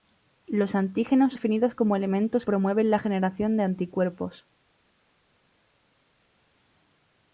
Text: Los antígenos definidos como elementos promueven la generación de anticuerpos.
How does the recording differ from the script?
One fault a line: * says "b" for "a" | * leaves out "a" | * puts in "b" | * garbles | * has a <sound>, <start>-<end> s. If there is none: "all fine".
all fine